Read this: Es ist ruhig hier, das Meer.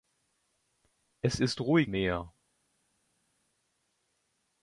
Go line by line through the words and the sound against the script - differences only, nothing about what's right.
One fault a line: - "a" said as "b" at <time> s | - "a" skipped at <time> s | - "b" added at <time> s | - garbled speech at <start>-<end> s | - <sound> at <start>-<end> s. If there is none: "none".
- "hier das" skipped at 1.9 s